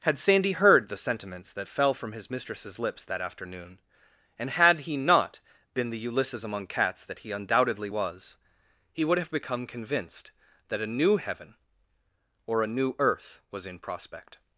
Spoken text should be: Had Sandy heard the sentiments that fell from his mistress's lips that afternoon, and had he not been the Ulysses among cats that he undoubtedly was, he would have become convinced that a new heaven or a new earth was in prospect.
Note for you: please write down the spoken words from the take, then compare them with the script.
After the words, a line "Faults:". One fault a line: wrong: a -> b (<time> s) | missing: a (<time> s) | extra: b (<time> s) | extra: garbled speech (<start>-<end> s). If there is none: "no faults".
Had Sandy heard the sentiments that fell from his mistress's lips that afternoon, and had he not been the Ulysses among cats that he undoubtedly was, he would have become convinced that a new heaven or a new earth was in prospect.
Faults:
no faults